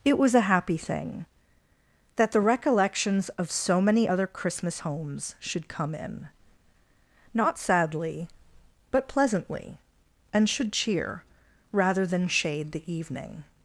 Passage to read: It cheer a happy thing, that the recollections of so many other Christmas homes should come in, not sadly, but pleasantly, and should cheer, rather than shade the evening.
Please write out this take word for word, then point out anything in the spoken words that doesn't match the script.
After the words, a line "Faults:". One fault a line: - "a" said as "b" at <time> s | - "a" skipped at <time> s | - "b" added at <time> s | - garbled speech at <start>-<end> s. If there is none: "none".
It was a happy thing, that the recollections of so many other Christmas homes should come in, not sadly, but pleasantly, and should cheer, rather than shade the evening.
Faults:
- "cheer" said as "was" at 0.2 s